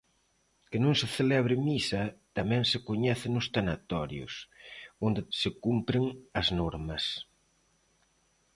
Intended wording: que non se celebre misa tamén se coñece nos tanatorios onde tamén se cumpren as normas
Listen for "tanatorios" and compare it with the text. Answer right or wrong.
right